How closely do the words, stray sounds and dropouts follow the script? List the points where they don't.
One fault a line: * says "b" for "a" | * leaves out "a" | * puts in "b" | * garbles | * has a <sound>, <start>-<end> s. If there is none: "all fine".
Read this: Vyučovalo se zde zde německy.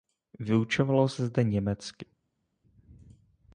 * leaves out "zde"